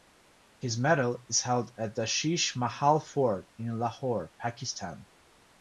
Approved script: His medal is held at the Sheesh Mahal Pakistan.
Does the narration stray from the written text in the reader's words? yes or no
yes